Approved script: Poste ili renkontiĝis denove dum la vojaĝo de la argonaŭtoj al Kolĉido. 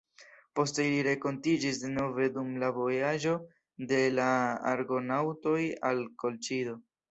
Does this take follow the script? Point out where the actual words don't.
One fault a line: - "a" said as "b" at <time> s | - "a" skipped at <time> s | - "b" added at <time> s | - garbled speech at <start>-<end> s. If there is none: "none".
none